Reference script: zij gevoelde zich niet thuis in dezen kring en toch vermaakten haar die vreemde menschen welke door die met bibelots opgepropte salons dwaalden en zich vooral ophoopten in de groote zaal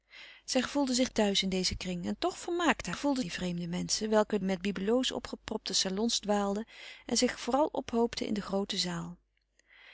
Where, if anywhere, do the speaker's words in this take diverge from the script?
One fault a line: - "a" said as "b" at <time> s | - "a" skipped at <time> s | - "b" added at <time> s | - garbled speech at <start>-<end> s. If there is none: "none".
- "niet" skipped at 1.1 s
- "haar" said as "gevoelde" at 2.9 s
- "door die" skipped at 4.4 s